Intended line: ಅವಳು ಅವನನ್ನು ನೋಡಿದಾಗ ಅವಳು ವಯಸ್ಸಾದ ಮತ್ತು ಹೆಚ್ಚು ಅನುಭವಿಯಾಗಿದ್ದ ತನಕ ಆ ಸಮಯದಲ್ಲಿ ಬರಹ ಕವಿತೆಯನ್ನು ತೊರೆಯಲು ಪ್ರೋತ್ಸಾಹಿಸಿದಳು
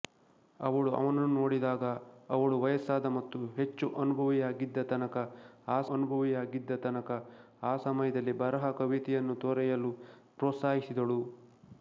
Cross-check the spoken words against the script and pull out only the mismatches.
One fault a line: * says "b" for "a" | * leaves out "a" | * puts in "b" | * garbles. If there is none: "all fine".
* puts in "ಅನುಭವಿಯಾಗಿದ್ದ ತನಕ ಆ"